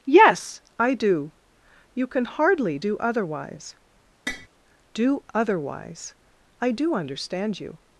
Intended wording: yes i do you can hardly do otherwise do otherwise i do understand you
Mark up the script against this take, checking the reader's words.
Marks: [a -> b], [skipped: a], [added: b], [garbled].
yes i do you can hardly do otherwise do otherwise i do understand you